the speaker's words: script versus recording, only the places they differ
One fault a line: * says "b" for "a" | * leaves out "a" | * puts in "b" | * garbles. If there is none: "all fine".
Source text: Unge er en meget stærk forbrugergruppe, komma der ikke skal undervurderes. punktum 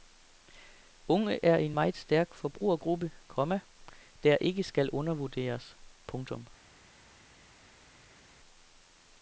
all fine